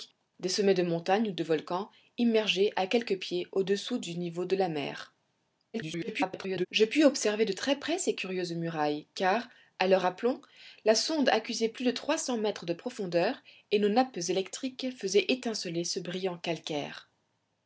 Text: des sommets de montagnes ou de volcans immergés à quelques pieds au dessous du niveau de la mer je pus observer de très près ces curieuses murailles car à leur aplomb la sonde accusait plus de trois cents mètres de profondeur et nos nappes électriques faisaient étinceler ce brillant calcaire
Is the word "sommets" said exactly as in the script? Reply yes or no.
yes